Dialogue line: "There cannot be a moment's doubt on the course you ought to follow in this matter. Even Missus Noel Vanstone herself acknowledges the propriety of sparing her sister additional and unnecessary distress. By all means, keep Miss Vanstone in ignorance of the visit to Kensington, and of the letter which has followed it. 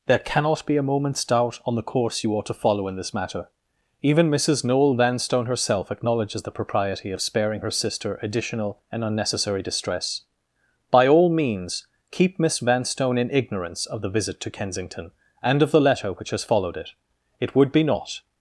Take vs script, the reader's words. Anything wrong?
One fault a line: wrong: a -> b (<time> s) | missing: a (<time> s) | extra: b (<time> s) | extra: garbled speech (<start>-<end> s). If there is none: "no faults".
extra: It would be not (17.4 s)